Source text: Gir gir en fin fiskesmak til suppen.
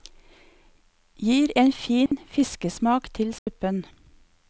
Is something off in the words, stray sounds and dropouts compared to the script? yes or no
yes